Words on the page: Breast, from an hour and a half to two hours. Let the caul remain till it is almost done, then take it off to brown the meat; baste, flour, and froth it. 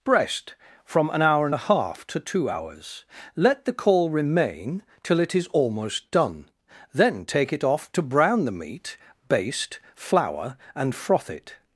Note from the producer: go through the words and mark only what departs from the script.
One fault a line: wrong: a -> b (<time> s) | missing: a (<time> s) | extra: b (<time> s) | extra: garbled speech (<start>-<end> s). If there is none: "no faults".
no faults